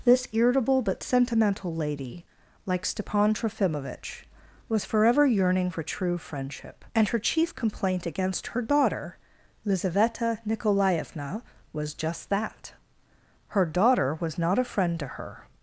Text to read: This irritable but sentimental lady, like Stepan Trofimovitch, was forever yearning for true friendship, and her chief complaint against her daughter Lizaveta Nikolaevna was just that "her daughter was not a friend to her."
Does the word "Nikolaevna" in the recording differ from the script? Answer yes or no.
no